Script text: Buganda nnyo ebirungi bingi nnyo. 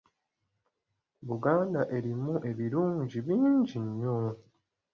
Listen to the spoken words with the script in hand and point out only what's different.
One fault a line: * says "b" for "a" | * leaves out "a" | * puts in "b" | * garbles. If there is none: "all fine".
* says "erimu" for "nnyo"